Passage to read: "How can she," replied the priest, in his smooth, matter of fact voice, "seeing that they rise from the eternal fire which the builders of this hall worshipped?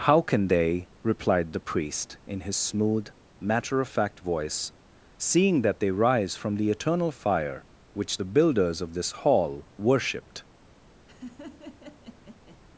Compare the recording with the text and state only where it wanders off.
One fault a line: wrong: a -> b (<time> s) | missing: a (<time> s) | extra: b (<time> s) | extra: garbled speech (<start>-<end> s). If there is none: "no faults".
wrong: she -> they (0.5 s)